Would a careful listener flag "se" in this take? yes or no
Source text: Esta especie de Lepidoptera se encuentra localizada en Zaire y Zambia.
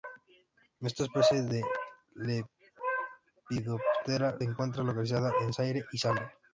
yes